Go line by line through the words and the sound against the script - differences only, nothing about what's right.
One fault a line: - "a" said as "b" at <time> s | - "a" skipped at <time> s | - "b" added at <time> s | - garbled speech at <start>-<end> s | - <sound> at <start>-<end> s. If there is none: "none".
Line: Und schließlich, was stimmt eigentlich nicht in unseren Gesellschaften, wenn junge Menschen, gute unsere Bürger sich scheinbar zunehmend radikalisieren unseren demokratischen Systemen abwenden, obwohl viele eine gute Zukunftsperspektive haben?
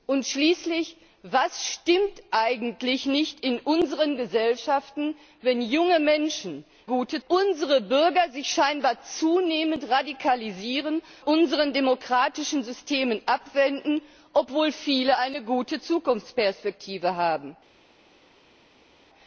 none